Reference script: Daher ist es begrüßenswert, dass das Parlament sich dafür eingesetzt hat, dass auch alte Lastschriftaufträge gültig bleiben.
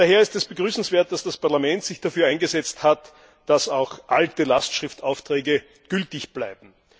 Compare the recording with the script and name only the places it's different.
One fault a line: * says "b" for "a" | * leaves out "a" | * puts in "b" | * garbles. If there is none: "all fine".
all fine